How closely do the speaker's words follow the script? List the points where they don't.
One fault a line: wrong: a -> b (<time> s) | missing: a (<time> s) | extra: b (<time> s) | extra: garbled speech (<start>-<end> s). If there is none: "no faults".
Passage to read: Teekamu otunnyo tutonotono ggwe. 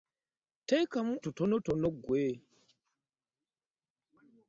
missing: otunnyo (1.1 s)